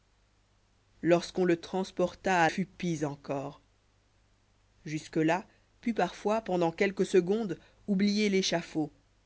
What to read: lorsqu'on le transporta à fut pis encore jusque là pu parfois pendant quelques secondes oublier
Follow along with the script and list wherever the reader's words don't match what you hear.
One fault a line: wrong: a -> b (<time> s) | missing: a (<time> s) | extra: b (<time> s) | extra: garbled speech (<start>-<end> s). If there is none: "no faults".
no faults